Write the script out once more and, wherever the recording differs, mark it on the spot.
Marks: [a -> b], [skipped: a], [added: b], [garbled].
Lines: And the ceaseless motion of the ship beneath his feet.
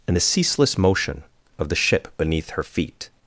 And the ceaseless motion of the ship beneath [his -> her] feet.